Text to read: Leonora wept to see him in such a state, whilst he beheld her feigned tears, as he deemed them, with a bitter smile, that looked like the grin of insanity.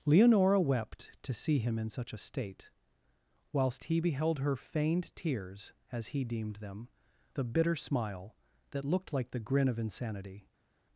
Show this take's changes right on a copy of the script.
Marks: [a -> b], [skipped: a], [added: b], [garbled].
Leonora wept to see him in such a state, whilst he beheld her feigned tears, as he deemed them, [skipped: with] a bitter smile, that looked like the grin of insanity.